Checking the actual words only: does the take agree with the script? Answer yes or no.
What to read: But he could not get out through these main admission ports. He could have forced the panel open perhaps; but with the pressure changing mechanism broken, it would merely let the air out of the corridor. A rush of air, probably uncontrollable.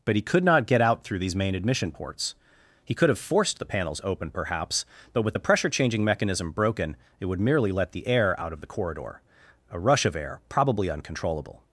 no